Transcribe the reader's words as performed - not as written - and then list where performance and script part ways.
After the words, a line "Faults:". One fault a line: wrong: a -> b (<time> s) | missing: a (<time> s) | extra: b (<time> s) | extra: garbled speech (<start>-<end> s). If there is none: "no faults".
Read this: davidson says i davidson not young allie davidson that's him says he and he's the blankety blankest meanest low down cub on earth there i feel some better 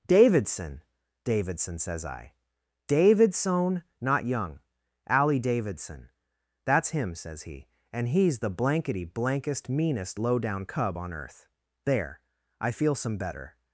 davidson davidson says i davidson not young allie davidson that's him says he and he's the blankety blankest meanest low down cub on earth there i feel some better
Faults:
extra: davidson (1.2 s)